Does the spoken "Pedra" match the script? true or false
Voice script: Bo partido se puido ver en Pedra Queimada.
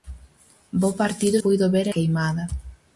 false